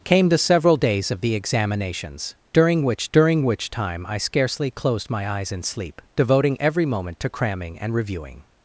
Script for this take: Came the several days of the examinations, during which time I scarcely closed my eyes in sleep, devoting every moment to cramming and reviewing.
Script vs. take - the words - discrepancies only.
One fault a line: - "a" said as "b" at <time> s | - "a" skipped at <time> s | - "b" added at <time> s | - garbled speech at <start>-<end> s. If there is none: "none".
- "during which" added at 3.1 s